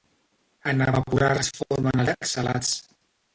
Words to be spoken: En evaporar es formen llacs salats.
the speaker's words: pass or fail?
pass